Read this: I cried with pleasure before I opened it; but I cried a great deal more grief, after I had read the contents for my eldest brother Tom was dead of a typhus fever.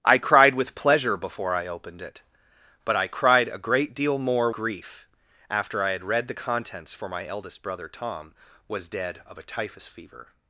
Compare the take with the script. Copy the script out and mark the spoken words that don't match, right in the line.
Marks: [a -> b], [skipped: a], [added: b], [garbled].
I cried with pleasure before I opened it; but I cried a great deal more grief, after I had read the contents for my eldest brother Tom was dead of a typhus fever.